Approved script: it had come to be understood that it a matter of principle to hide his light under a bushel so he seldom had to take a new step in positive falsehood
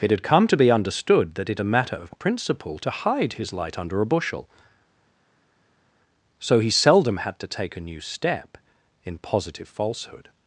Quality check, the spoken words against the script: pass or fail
pass